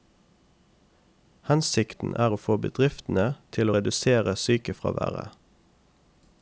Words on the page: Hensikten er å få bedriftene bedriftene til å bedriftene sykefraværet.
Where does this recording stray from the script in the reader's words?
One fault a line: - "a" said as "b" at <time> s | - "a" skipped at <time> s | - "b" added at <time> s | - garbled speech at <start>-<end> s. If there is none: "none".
- "bedriftene" skipped at 3.3 s
- "bedriftene" said as "redusere" at 3.7 s